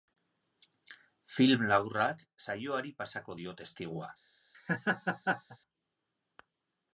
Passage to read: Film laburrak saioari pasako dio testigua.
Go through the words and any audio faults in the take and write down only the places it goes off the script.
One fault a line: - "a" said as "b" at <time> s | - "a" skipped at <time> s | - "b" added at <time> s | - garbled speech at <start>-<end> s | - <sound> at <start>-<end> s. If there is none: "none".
- laugh at 4.5-5.6 s